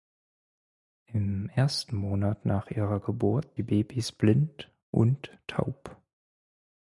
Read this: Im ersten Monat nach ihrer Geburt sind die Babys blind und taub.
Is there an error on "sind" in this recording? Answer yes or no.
yes